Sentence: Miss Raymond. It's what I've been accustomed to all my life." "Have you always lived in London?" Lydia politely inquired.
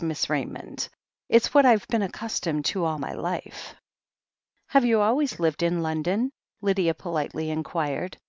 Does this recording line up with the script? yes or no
yes